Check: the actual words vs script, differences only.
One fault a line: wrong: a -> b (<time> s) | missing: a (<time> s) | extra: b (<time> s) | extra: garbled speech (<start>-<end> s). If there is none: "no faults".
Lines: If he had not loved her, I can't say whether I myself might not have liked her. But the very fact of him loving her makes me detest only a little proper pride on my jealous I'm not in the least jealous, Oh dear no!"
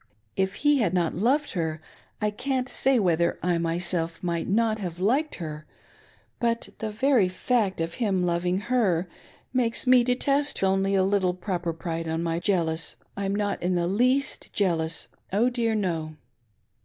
no faults